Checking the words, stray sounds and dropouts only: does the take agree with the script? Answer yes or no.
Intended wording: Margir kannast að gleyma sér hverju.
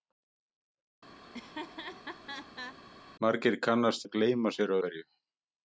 no